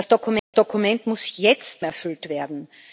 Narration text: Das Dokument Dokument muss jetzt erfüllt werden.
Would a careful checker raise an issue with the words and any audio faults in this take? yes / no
yes